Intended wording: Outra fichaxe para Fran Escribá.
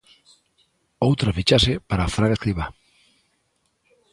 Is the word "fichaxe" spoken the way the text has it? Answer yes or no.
yes